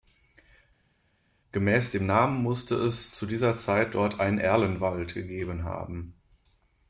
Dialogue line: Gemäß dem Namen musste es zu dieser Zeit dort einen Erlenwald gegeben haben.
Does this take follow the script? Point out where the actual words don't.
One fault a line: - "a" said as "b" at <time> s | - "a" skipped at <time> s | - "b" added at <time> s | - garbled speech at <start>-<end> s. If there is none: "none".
none